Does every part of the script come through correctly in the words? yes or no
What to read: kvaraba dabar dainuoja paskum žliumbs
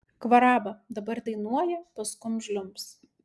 yes